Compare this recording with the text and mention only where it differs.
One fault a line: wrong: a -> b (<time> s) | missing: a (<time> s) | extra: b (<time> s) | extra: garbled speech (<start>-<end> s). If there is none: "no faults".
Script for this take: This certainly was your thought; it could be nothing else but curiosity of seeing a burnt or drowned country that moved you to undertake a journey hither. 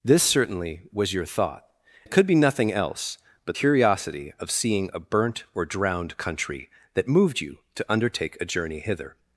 no faults